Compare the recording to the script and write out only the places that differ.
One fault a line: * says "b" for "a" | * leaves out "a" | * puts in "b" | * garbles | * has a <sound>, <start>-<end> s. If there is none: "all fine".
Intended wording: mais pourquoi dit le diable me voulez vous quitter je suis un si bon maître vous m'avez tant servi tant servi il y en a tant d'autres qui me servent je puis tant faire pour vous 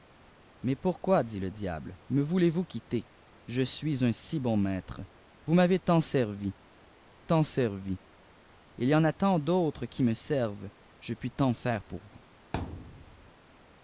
* has a thud, 12.5-13.3 s